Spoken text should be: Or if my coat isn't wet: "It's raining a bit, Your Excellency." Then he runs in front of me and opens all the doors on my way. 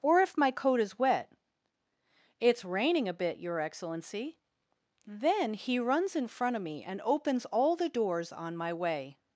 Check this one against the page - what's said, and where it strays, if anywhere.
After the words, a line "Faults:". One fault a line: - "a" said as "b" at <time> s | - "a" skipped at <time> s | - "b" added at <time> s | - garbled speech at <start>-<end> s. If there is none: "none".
Or if my coat is wet: "It's raining a bit, Your Excellency." Then he runs in front of me and opens all the doors on my way.
Faults:
- "isn't" said as "is" at 0.8 s